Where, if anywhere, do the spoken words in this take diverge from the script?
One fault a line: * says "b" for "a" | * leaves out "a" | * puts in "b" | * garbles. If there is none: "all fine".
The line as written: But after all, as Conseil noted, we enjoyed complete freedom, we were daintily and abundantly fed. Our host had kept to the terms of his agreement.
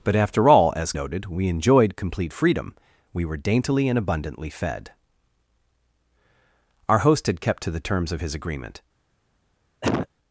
* leaves out "Conseil"